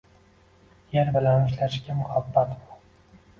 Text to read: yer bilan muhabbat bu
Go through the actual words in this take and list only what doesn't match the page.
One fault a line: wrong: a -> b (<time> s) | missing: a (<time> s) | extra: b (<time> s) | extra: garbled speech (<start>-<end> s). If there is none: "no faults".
extra: ishlashga (1.5 s)